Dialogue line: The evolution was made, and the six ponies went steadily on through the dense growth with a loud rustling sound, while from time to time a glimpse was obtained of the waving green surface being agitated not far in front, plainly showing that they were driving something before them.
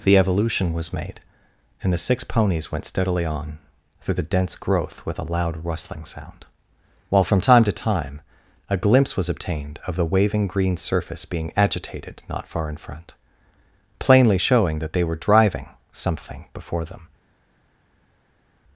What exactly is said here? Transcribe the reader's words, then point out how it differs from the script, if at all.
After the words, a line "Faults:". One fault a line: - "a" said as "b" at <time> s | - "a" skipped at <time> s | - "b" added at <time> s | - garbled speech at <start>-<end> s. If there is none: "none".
The evolution was made, and the six ponies went steadily on through the dense growth with a loud rustling sound, while from time to time a glimpse was obtained of the waving green surface being agitated not far in front, plainly showing that they were driving something before them.
Faults:
none